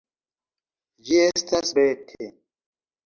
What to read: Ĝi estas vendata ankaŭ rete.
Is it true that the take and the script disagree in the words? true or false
true